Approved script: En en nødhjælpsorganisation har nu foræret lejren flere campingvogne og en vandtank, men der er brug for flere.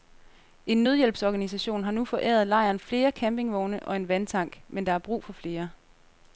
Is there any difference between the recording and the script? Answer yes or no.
yes